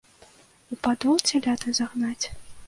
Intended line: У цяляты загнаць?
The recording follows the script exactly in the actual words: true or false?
false